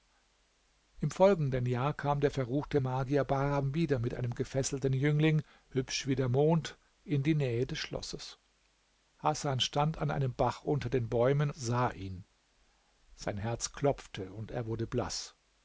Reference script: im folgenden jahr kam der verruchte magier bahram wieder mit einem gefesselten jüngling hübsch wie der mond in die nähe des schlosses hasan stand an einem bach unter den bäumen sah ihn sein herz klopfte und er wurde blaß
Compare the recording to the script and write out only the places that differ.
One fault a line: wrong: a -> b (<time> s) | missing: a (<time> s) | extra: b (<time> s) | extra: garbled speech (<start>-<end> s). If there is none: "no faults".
no faults